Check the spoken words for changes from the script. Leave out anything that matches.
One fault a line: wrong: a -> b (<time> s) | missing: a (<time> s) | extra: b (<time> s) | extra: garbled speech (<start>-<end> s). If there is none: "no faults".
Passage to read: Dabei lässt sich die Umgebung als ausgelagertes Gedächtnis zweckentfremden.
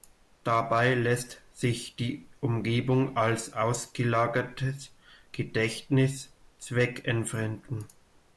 no faults